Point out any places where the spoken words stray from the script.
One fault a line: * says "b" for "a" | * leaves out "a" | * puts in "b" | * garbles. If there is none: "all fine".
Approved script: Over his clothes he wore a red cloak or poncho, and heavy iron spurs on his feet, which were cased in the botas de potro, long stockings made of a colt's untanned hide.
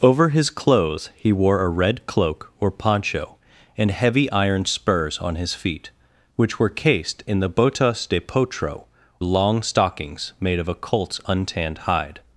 all fine